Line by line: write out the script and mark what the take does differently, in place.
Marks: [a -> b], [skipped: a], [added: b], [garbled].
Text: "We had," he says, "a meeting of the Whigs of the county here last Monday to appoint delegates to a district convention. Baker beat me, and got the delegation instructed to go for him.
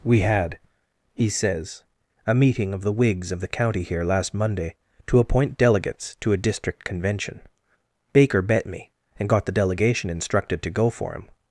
"We had," he says, "a meeting of the Whigs of the county here last Monday to appoint delegates to a district convention. Baker [beat -> bet] me, and got the delegation instructed to go for him.